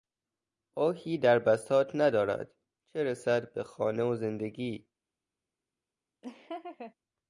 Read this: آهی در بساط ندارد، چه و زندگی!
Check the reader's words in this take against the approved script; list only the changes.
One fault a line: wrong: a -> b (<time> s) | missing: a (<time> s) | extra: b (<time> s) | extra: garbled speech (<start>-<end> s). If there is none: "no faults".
extra: رسد به خانه (3.0 s)